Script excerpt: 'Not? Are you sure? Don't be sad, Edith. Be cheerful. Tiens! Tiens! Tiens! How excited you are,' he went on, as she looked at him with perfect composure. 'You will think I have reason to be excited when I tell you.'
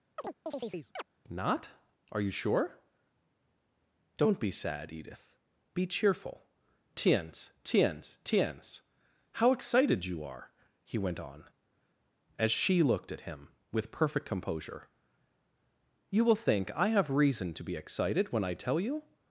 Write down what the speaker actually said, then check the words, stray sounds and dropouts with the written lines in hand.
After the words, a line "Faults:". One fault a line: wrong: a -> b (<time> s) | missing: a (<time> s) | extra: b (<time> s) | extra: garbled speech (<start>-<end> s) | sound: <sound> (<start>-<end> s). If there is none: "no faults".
'Not? Are you sure? Don't be sad, Edith. Be cheerful. Tiens! Tiens! Tiens! How excited you are,' he went on, as she looked at him with perfect composure. 'You will think I have reason to be excited when I tell you.'
Faults:
sound: chirp (0.2-1.0 s)